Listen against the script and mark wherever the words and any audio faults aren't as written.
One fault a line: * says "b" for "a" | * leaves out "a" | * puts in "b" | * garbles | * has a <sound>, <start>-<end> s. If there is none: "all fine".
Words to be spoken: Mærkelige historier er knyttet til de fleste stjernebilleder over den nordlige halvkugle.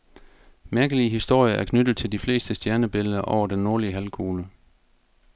all fine